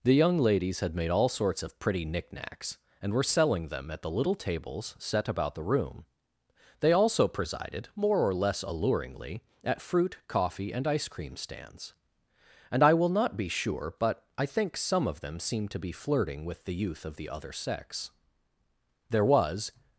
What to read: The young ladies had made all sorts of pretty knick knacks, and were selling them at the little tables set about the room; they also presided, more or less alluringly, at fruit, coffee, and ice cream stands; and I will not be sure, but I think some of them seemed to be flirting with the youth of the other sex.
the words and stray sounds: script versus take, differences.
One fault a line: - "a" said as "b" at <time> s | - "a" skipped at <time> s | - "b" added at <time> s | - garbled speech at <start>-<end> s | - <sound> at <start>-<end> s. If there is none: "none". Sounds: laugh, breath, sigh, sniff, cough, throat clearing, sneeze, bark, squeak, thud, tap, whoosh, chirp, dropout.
- "There was" added at 19.1 s